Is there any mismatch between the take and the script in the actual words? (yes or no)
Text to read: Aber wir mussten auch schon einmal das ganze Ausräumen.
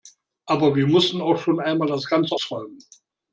no